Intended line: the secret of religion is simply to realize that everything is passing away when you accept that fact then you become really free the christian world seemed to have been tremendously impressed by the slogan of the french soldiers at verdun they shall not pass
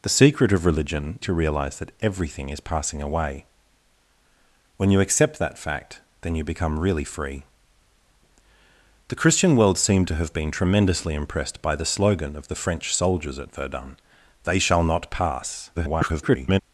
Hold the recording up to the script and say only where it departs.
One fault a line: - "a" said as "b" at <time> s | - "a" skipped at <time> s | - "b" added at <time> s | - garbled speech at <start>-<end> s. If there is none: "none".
- "is simply" skipped at 1.2 s
- garbled speech at 15.8-16.6 s